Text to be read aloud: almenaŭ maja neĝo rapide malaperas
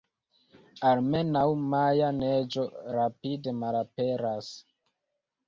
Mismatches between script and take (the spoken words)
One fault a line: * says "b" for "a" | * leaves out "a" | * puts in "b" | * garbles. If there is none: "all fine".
all fine